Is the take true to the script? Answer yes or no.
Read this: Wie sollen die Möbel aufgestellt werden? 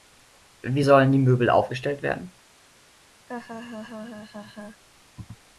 yes